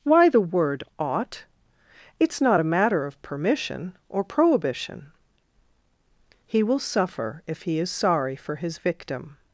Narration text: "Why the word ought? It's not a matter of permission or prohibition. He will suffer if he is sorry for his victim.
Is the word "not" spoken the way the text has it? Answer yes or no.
yes